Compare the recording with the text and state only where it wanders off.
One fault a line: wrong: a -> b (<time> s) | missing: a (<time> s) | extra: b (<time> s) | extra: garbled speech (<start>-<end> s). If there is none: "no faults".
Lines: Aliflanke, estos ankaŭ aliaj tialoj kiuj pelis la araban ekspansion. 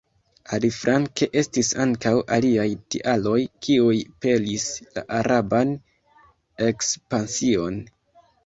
wrong: estos -> estis (1.4 s)